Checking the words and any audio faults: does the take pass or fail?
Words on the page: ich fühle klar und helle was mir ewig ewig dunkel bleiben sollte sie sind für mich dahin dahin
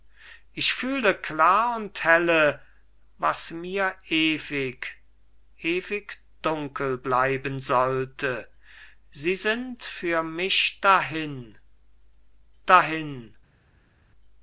pass